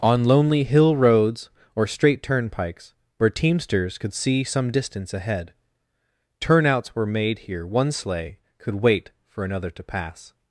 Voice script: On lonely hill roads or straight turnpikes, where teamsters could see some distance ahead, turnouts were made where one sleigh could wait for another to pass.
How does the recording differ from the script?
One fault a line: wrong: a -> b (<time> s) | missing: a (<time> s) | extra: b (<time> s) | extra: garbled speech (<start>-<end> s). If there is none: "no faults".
wrong: where -> here (7.4 s)